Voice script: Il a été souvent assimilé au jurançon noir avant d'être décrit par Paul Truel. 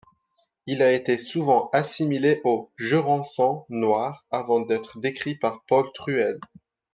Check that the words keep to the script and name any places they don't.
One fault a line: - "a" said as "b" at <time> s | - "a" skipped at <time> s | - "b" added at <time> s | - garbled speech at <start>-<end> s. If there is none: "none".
none